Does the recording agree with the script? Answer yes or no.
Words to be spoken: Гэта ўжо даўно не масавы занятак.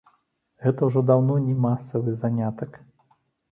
yes